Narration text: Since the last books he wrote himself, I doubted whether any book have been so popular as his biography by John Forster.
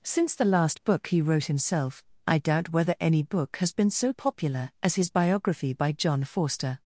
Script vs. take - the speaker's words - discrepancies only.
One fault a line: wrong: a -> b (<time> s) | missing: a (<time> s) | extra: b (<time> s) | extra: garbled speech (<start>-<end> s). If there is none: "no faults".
wrong: books -> book (0.8 s)
wrong: doubted -> doubt (2.4 s)
wrong: have -> has (3.6 s)